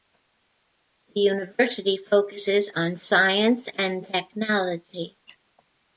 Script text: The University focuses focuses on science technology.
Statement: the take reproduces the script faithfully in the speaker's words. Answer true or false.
false